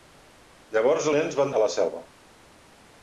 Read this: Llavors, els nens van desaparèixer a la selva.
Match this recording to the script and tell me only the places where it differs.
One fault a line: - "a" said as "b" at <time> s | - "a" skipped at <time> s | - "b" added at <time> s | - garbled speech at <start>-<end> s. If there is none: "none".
- "els" skipped at 1.1 s
- "desaparèixer" skipped at 1.5 s